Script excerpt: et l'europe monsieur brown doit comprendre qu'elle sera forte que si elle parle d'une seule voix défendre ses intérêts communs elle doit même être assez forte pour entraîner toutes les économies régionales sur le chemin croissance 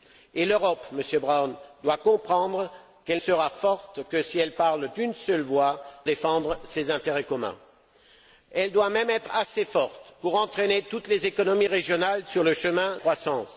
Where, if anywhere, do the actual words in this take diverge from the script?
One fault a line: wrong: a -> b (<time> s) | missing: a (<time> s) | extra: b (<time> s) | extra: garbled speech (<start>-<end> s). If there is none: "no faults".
no faults